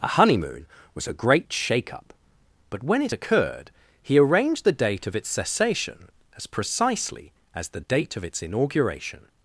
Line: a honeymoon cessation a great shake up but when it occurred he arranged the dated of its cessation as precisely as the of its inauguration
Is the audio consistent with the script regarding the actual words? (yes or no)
no